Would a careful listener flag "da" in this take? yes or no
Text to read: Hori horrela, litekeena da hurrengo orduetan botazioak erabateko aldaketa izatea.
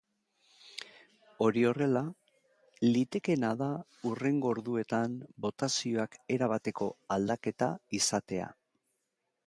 no